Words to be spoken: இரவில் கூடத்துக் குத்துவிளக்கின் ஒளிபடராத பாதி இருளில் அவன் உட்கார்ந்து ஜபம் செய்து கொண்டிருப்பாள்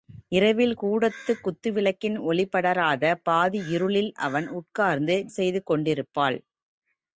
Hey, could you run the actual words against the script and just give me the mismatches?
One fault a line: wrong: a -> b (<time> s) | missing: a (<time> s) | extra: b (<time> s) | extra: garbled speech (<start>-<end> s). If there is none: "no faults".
missing: ஜபம் (5.2 s)